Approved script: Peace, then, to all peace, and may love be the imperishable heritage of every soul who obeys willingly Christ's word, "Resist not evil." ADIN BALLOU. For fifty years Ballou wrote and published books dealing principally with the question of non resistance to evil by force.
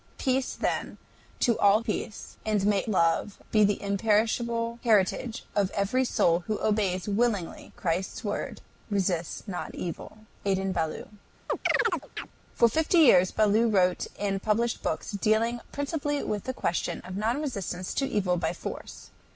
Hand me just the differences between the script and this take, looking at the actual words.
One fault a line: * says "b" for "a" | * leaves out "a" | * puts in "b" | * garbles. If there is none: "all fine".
all fine